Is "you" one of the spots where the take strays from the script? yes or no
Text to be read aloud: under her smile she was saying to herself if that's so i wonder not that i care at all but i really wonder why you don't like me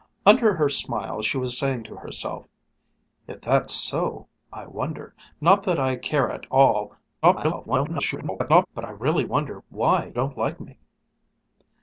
yes